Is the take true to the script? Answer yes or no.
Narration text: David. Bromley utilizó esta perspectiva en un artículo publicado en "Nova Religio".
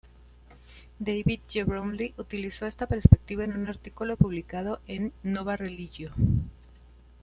no